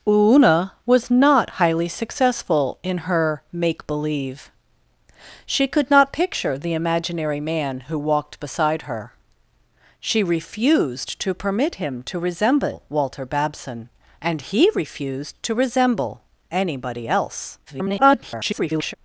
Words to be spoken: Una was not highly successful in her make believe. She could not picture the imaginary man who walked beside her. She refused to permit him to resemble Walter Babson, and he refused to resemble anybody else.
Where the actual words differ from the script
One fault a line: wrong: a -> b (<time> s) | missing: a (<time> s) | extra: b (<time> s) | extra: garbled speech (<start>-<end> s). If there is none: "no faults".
extra: garbled speech (17.7-18.9 s)